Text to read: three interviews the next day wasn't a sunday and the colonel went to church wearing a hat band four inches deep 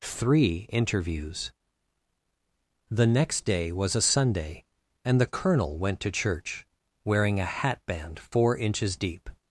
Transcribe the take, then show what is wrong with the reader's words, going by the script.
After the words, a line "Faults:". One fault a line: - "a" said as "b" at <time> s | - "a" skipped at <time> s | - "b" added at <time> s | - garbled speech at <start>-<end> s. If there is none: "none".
three interviews the next day was a sunday and the colonel went to church wearing a hat band four inches deep
Faults:
- "wasn't" said as "was" at 3.7 s